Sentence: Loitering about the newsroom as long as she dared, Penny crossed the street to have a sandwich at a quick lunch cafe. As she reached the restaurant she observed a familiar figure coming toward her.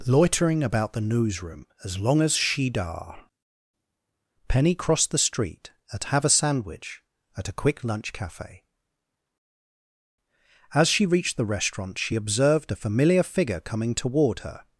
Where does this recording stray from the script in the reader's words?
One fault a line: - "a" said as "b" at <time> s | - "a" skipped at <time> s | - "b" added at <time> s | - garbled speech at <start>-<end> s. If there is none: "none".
- "dared" said as "dar" at 2.7 s
- "to" said as "at" at 5.9 s